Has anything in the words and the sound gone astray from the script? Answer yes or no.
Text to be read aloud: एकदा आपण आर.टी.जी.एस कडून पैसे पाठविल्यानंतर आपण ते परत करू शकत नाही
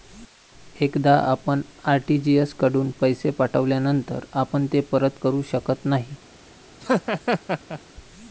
yes